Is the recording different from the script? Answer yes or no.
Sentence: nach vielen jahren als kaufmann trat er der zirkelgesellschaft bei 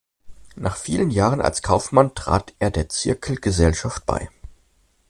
no